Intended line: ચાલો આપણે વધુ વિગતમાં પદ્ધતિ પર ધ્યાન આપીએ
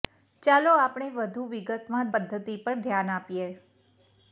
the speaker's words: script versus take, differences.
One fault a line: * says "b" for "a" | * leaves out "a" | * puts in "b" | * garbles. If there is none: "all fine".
all fine